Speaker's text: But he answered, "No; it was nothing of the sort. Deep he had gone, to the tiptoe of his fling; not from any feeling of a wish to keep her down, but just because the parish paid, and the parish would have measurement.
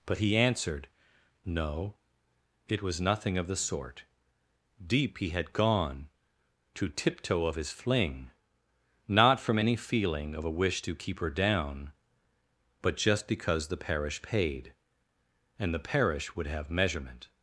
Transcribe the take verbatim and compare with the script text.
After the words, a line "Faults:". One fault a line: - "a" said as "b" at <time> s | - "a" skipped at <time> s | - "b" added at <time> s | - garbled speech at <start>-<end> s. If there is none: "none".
But he answered, "No; it was nothing of the sort. Deep he had gone, to tiptoe of his fling; not from any feeling of a wish to keep her down, but just because the parish paid, and the parish would have measurement.
Faults:
- "the" skipped at 6.9 s